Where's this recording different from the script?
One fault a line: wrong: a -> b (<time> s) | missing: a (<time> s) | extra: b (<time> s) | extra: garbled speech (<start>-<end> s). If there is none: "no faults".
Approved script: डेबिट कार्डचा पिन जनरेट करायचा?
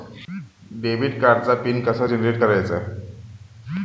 extra: कसा (1.8 s)